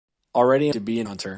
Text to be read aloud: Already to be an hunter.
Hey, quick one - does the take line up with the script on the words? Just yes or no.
yes